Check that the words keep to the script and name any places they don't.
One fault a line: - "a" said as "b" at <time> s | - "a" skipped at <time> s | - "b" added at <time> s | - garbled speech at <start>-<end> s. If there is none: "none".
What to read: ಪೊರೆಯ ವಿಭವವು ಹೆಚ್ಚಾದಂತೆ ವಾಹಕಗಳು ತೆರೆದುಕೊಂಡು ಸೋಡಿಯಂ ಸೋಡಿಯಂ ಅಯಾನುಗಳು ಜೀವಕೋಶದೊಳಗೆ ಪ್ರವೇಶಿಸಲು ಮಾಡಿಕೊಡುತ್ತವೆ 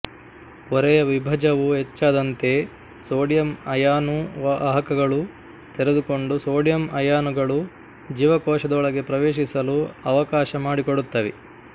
- "ಸೋಡಿಯಂ ಅಯಾನು" added at 3.1 s
- "ಸೋಡಿಯಂ" skipped at 6.8 s
- "ಅವಕಾಶ" added at 10.1 s